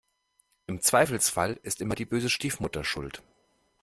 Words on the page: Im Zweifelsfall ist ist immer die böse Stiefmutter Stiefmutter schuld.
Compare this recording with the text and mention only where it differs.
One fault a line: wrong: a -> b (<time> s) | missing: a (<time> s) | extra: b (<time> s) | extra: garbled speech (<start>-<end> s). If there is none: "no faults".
missing: ist (1.8 s)
missing: Stiefmutter (2.8 s)